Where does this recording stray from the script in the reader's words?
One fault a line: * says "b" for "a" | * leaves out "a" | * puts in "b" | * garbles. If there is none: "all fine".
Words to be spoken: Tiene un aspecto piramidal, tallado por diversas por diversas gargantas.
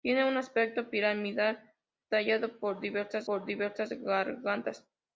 all fine